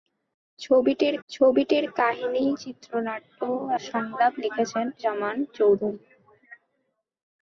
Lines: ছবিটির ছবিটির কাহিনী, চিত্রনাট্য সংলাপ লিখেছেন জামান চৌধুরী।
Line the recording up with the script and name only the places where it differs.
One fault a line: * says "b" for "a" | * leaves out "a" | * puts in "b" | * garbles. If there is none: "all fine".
all fine